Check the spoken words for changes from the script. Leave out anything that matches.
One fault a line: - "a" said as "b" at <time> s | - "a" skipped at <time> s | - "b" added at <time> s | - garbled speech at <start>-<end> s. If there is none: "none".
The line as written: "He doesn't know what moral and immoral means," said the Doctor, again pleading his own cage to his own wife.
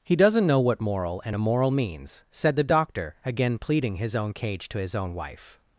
none